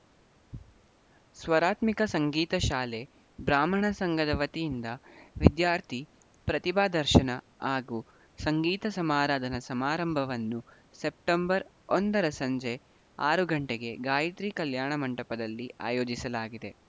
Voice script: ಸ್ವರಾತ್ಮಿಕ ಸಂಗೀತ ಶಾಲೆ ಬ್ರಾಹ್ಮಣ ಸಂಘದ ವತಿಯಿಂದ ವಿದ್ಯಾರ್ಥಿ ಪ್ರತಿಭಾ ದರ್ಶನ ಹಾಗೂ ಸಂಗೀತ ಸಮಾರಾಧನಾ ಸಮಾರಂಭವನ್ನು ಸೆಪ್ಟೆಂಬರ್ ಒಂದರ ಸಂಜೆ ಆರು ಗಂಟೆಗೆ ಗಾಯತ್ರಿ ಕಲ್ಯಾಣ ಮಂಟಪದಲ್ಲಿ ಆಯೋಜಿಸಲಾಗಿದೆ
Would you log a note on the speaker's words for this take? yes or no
no